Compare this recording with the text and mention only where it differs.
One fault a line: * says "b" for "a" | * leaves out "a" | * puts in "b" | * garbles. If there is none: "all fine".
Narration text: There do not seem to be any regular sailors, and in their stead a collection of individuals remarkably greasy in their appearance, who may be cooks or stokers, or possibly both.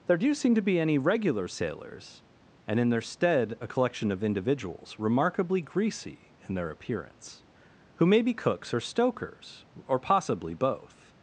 * leaves out "not"